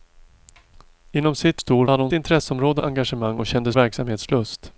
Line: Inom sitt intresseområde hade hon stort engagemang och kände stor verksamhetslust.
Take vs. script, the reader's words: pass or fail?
fail